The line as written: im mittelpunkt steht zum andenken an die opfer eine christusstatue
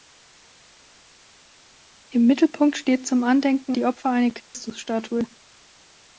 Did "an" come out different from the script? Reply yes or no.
yes